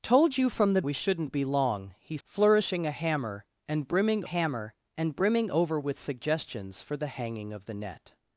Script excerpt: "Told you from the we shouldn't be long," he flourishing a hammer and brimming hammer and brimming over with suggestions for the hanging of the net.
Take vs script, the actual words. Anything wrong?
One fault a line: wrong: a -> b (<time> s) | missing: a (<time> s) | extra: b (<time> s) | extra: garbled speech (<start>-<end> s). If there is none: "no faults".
no faults